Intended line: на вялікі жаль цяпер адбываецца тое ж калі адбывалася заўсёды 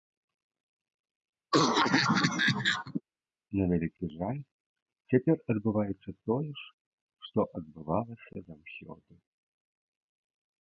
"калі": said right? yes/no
no